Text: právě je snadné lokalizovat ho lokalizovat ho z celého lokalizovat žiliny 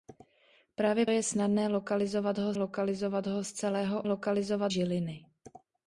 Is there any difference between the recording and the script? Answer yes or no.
no